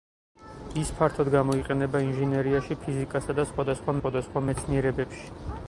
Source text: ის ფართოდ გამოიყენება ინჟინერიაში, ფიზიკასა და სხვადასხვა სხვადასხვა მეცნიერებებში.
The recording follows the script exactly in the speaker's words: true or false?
true